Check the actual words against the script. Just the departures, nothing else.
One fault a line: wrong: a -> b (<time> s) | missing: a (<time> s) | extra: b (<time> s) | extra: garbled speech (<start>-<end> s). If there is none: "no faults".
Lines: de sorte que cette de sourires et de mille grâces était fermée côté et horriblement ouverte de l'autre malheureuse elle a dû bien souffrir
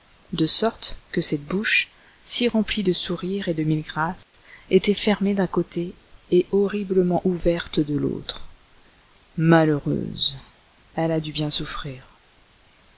extra: bouche si remplie (1.4 s)
extra: d'un (5.3 s)